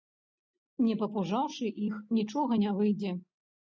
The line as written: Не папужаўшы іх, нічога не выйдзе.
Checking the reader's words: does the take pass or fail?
pass